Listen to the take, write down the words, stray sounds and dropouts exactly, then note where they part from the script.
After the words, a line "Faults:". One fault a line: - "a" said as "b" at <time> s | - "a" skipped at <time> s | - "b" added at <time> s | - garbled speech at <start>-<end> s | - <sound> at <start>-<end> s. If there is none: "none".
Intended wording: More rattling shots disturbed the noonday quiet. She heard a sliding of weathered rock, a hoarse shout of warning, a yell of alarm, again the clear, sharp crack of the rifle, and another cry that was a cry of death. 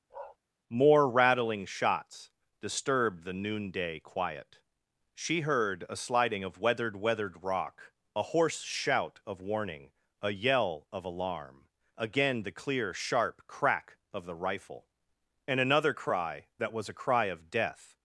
More rattling shots disturbed the noonday quiet. She heard a sliding of weathered weathered rock, a hoarse shout of warning, a yell of alarm, again the clear, sharp crack of the rifle, and another cry that was a cry of death.
Faults:
- bark at 0.1-0.4 s
- "weathered" added at 7.0 s